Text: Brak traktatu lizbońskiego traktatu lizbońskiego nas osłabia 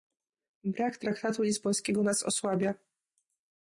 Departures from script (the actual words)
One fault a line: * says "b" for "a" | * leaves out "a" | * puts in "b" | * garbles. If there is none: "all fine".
* leaves out "traktatu lizbońskiego"